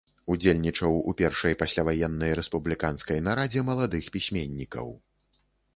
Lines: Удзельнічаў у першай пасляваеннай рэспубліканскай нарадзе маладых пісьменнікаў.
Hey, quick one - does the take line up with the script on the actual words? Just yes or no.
yes